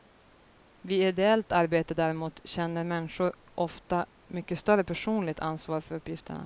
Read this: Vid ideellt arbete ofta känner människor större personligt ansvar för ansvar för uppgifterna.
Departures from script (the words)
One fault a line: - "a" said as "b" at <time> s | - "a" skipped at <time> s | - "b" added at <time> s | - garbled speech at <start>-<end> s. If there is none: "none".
- "ofta" said as "däremot" at 1.9 s
- "ofta mycket" added at 3.5 s
- "ansvar för" skipped at 5.9 s